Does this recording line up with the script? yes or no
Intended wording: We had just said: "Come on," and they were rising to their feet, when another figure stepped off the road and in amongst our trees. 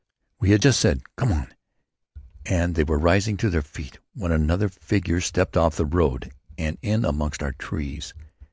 yes